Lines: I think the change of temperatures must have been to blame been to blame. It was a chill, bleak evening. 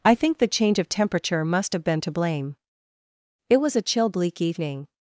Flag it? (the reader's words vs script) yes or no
yes